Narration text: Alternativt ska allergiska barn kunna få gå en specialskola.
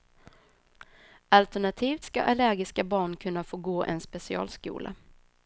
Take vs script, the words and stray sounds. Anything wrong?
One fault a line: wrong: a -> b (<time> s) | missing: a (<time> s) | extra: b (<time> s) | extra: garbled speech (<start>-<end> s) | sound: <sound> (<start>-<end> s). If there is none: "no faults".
no faults